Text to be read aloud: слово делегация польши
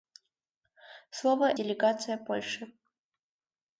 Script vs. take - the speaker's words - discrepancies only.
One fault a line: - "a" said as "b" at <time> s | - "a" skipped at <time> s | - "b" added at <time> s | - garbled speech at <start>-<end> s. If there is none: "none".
none